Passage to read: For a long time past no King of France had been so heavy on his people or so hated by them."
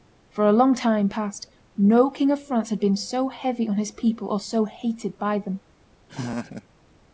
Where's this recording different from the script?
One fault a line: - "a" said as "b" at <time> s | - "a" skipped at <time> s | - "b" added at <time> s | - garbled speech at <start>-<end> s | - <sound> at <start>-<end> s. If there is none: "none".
- laugh at 6.1-6.7 s